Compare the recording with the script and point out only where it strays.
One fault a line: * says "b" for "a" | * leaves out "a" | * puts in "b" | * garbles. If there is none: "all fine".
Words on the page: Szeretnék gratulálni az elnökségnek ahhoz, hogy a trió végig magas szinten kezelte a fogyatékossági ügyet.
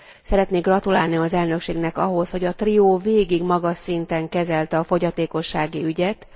all fine